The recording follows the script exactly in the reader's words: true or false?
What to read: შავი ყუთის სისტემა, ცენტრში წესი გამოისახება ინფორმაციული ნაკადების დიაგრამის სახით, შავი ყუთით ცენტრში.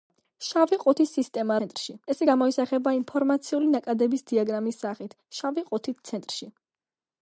true